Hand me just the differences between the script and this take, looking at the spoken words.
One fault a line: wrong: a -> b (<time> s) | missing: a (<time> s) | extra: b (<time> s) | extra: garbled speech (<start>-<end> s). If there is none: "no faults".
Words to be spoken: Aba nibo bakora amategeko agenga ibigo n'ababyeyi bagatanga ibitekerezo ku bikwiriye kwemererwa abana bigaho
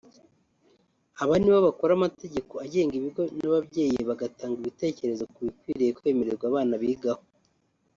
no faults